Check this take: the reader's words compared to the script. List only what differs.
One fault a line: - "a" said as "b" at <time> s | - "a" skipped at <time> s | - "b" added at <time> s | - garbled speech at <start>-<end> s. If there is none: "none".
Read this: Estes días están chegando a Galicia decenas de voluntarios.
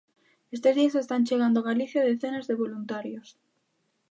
none